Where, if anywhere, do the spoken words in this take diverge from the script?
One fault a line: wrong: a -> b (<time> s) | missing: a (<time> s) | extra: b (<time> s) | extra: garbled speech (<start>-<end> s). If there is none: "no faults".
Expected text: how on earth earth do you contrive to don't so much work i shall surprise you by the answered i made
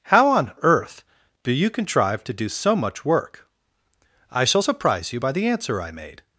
missing: earth (1.0 s)
wrong: don't -> do (2.3 s)
wrong: answered -> answer (5.5 s)